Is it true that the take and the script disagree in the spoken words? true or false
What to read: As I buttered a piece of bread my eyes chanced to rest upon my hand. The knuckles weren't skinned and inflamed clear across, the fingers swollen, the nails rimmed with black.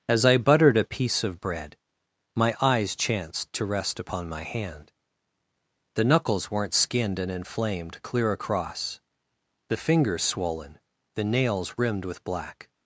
false